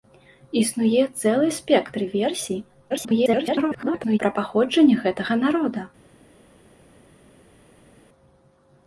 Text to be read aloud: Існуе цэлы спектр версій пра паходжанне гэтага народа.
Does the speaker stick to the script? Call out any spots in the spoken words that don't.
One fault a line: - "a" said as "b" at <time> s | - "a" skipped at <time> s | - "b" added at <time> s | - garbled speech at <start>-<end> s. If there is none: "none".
- garbled speech at 2.9-4.2 s